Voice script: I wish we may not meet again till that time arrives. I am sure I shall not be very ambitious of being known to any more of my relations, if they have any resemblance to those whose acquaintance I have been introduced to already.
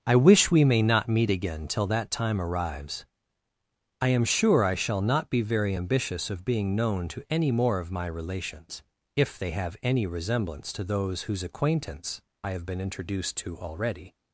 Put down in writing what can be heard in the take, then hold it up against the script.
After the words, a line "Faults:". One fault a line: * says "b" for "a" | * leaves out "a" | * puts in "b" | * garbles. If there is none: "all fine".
I wish we may not meet again till that time arrives. I am sure I shall not be very ambitious of being known to any more of my relations, if they have any resemblance to those whose acquaintance I have been introduced to already.
Faults:
all fine